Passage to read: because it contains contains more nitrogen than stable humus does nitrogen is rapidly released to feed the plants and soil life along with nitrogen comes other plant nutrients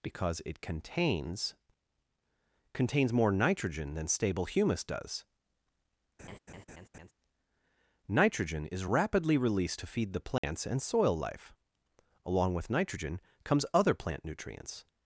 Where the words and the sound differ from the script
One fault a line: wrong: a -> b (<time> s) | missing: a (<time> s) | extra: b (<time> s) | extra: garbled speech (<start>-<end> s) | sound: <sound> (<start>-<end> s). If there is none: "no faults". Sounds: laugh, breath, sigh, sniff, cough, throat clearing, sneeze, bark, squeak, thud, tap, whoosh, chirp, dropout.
sound: laugh (6.2-7.1 s)
sound: dropout (10.4-10.4 s)